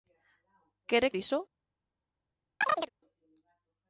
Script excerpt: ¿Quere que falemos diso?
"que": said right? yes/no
no